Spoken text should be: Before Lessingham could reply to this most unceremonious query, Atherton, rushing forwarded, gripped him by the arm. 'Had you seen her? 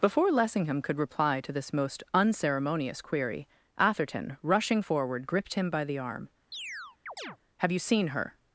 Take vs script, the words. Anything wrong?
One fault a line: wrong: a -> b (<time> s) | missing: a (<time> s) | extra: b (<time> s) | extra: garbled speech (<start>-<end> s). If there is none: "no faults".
wrong: forwarded -> forward (4.8 s)
wrong: Had -> Have (7.6 s)